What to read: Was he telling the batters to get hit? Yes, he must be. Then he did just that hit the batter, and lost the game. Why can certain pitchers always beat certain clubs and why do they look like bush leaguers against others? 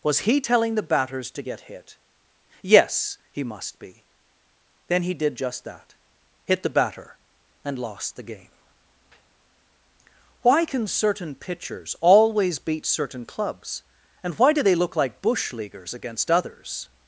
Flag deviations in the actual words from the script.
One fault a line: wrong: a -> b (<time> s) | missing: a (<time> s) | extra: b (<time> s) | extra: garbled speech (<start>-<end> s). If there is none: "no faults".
no faults